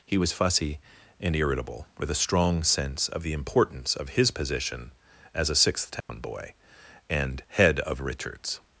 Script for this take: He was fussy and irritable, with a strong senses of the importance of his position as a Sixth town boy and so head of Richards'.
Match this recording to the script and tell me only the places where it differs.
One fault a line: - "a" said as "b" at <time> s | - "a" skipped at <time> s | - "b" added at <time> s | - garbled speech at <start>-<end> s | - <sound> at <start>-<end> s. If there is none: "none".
- "senses" said as "sense" at 2.6 s
- dropout at 6.0-6.1 s
- "so" skipped at 7.4 s